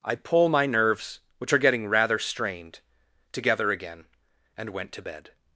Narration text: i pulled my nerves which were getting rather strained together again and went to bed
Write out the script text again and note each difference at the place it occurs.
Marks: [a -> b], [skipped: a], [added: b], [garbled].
i [pulled -> pull] my nerves which [were -> are] getting rather strained together again and went to bed